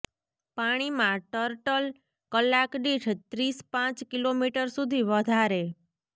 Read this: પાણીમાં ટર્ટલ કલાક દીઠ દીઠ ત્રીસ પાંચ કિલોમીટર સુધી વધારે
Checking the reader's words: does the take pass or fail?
fail